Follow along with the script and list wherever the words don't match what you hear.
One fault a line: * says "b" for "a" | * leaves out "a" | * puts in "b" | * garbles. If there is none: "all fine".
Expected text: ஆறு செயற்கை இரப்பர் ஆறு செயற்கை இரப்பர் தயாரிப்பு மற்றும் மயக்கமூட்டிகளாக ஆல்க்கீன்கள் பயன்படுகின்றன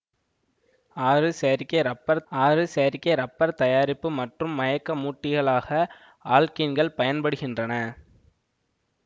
all fine